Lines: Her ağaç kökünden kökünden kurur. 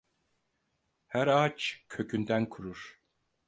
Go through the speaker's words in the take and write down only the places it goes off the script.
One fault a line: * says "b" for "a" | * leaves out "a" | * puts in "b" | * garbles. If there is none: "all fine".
* leaves out "kökünden"